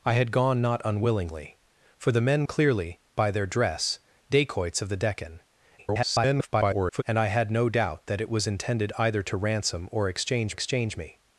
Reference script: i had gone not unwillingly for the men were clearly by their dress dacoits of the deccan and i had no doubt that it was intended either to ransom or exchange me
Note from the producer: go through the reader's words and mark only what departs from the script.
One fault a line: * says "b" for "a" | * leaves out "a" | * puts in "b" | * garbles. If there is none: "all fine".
* leaves out "were"
* garbles
* puts in "exchange"